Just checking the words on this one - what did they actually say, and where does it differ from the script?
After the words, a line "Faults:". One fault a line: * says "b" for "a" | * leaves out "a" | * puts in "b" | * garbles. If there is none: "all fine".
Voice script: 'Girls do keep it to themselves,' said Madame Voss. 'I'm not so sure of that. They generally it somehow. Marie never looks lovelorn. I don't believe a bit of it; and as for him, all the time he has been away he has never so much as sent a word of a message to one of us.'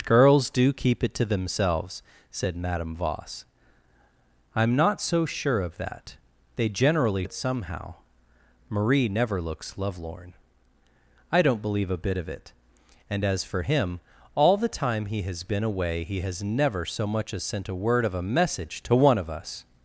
'Girls do keep it to themselves,' said Madame Voss. 'I'm not so sure of that. They generally it somehow. Marie never looks lovelorn. I don't believe a bit of it; and as for him, all the time he has been away he has never so much as sent a word of a message to one of us.'
Faults:
all fine